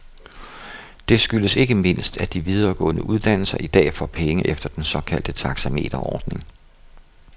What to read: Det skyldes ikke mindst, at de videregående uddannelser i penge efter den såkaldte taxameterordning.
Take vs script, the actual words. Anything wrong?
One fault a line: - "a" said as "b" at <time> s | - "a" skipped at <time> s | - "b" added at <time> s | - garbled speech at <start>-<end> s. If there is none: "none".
- "dag får" added at 3.7 s